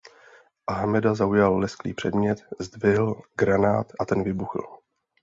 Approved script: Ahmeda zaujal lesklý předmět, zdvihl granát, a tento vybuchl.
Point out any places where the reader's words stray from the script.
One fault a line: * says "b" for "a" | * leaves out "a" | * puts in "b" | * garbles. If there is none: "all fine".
* says "ten" for "tento"